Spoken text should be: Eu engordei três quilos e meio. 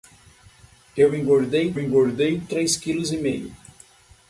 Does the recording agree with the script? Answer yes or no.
no